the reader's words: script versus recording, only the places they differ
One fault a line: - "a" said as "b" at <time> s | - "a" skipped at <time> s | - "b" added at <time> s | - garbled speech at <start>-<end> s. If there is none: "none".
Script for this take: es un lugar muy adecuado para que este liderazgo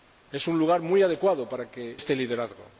none